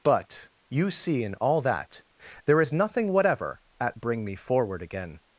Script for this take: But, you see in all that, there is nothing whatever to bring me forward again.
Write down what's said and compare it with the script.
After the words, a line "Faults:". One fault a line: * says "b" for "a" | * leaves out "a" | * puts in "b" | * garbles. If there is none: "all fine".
But, you see in all that, there is nothing whatever at bring me forward again.
Faults:
* says "at" for "to"